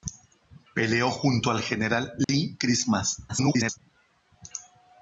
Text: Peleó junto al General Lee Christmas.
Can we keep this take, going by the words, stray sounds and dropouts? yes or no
no